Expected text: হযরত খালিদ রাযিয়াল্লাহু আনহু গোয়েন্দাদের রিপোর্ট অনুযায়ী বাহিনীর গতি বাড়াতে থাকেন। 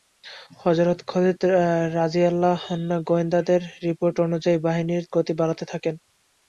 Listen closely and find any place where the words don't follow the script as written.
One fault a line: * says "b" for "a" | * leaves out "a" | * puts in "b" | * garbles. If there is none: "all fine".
all fine